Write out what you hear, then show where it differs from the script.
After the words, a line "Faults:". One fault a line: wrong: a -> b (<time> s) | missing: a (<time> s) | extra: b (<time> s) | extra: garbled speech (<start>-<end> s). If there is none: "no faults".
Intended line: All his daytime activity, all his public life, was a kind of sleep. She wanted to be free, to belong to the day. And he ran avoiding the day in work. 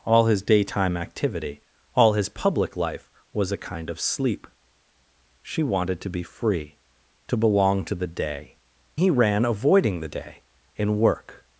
All his daytime activity, all his public life, was a kind of sleep. She wanted to be free, to belong to the day. He ran avoiding the day in work.
Faults:
missing: And (8.6 s)